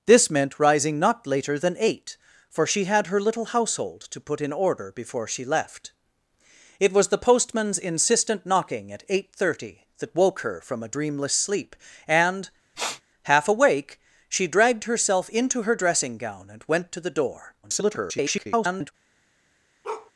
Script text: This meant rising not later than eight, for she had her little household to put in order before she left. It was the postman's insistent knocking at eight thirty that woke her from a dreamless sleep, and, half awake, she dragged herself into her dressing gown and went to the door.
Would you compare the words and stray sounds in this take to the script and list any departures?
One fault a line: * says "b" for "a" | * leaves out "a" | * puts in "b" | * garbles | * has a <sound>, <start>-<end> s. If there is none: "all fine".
* has a sniff, 12.7-13.0 s
* garbles
* has a bark, 19.8-20.1 s